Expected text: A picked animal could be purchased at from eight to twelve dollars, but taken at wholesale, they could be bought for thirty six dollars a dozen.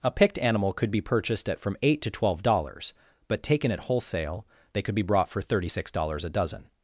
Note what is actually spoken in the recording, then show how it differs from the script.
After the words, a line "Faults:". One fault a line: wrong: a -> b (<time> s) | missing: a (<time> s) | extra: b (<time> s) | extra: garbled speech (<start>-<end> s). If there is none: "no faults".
A picked animal could be purchased at from eight to twelve dollars, but taken at wholesale, they could be brought for thirty six dollars a dozen.
Faults:
wrong: bought -> brought (5.0 s)